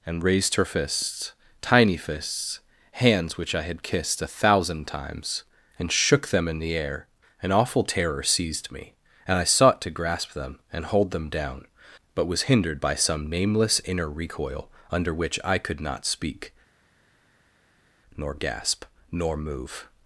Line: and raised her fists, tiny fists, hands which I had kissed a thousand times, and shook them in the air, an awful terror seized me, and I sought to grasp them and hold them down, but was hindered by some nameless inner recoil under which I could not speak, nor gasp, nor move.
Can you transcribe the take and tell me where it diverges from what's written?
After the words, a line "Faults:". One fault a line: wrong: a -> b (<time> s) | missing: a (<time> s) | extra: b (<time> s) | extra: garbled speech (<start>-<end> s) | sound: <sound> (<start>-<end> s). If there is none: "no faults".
and raised her fists, tiny fists, hands which I had kissed a thousand times, and shook them in the air, an awful terror seized me, and I sought to grasp them and hold them down, but was hindered by some nameless inner recoil under which I could not speak, nor gasp, nor move.
Faults:
no faults